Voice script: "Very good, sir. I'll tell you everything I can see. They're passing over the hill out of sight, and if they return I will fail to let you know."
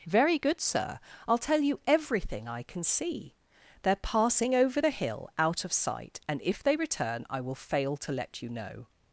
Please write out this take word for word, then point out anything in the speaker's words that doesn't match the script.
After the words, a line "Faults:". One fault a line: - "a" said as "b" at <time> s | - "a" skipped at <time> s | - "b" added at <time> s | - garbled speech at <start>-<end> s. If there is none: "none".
"Very good, sir. I'll tell you everything I can see. They're passing over the hill out of sight, and if they return I will fail to let you know."
Faults:
none